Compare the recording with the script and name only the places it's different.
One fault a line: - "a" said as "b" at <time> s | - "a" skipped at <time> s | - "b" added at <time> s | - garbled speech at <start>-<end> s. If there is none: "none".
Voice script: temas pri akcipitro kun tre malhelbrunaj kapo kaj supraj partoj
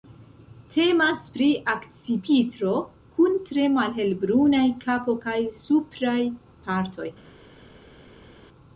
none